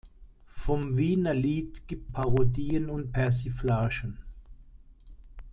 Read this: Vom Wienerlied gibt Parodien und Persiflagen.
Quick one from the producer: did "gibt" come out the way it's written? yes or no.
yes